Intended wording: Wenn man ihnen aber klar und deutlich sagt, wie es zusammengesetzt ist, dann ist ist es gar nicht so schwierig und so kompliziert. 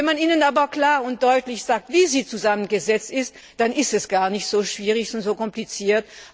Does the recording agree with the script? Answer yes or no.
no